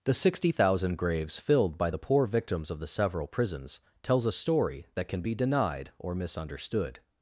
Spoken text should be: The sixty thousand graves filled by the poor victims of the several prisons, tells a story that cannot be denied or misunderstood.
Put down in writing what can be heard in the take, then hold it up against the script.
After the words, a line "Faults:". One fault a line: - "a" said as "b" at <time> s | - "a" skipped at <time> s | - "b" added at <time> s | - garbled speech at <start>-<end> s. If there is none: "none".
The sixty thousand graves filled by the poor victims of the several prisons, tells a story that can be denied or misunderstood.
Faults:
- "cannot" said as "can" at 5.1 s